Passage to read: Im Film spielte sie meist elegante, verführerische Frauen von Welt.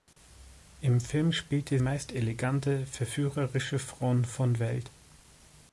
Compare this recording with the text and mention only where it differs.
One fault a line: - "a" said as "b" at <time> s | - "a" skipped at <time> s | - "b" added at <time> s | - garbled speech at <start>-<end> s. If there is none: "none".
- "sie" skipped at 1.8 s